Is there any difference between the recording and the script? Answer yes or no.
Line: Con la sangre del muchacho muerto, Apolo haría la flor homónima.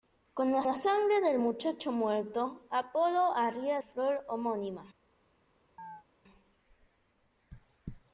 yes